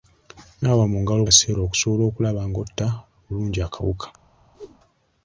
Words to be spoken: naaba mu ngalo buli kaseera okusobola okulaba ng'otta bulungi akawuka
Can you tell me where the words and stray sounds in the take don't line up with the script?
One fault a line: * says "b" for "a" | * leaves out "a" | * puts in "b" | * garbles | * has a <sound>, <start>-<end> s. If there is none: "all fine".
* leaves out "buli"
* has a whoosh, 4.5-4.8 s